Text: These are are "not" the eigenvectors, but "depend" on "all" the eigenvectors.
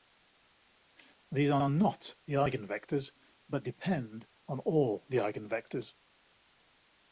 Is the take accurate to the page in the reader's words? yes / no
yes